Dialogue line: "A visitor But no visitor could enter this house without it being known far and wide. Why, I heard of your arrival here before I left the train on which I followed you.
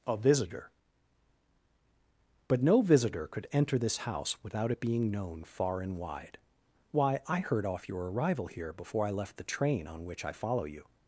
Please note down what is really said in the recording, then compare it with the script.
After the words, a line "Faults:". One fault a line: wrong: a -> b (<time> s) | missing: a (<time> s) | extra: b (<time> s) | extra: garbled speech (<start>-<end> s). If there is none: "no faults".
"A visitor But no visitor could enter this house without it being known far and wide. Why, I heard off your arrival here before I left the train on which I follow you.
Faults:
wrong: of -> off (7.6 s)
wrong: followed -> follow (10.3 s)